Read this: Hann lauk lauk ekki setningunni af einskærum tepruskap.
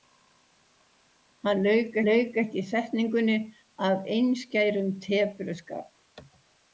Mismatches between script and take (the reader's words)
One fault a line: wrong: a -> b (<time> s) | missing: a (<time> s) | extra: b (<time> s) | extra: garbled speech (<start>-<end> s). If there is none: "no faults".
no faults